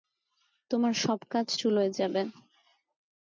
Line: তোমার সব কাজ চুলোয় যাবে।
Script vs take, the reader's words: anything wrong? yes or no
no